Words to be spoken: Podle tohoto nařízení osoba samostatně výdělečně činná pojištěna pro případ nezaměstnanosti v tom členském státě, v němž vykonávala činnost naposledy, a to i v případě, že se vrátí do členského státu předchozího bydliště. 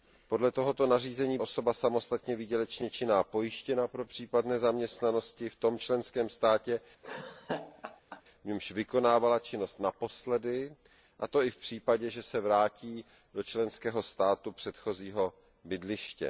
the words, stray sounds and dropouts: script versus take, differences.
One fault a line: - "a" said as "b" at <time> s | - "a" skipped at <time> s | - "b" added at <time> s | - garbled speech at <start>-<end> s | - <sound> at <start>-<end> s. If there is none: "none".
- laugh at 7.0-8.2 s